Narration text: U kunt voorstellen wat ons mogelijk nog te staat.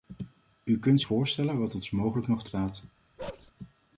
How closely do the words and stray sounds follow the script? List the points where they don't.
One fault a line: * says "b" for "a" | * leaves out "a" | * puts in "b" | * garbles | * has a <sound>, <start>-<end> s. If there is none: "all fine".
* has a bark, 3.2-3.5 s